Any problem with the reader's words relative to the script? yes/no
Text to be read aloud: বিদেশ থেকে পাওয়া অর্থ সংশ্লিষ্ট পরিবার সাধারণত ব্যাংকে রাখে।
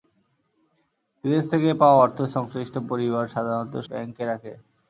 no